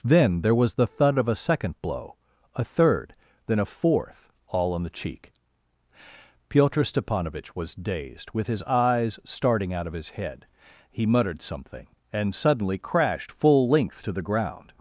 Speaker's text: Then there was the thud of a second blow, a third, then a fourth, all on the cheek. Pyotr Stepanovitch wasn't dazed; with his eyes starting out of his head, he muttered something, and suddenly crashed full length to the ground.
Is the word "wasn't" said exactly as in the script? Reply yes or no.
no